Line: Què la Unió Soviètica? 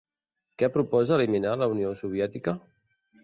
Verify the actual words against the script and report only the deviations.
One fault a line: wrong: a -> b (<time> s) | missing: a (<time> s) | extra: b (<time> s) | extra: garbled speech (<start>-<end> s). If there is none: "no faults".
extra: proposa eliminar (0.8 s)